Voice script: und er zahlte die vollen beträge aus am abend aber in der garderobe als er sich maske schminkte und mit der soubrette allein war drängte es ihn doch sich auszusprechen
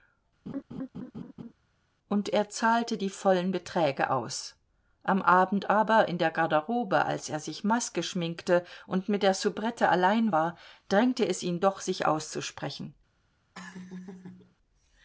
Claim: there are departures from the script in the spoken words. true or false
false